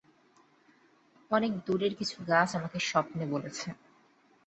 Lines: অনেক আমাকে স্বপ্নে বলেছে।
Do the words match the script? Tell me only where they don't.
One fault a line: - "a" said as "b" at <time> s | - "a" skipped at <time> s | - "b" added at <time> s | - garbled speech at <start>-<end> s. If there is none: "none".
- "দূরের কিছু গাছ" added at 1.6 s